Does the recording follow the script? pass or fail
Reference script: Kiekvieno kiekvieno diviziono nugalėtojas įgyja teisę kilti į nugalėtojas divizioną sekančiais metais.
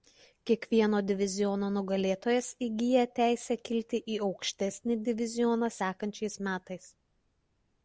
fail